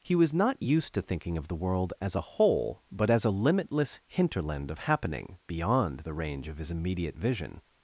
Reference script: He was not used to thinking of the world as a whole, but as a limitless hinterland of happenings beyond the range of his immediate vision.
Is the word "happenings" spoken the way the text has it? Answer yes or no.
no